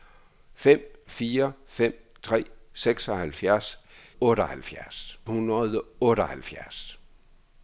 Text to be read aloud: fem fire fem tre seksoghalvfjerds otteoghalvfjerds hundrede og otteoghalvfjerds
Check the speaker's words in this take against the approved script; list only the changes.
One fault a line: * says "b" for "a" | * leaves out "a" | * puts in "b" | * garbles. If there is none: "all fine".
all fine